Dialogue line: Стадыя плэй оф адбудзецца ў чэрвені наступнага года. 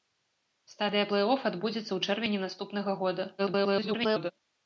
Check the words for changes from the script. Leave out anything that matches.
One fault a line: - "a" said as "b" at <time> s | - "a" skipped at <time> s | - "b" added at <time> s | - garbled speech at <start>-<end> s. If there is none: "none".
- garbled speech at 3.4-4.3 s